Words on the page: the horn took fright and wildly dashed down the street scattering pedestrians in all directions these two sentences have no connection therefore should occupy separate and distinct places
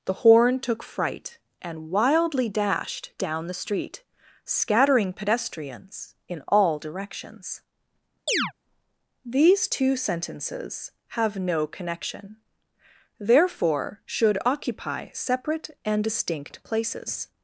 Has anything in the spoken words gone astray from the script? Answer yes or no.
no